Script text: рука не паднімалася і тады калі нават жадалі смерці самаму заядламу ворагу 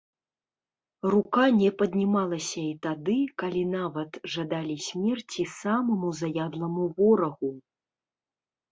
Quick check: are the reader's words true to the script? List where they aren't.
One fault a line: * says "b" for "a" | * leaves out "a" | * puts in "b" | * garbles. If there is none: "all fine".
all fine